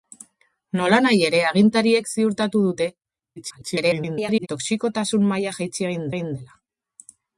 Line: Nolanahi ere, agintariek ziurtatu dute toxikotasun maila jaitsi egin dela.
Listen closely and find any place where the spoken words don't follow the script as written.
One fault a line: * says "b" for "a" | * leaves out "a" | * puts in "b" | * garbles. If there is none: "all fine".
* garbles
* puts in "egin"